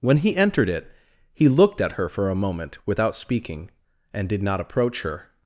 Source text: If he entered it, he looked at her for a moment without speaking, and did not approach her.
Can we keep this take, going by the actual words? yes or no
no